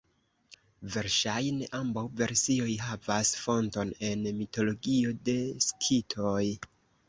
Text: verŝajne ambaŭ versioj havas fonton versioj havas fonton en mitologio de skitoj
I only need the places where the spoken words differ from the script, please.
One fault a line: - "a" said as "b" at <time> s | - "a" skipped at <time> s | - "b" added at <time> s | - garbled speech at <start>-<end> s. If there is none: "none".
- "versioj havas fonton" skipped at 3.9 s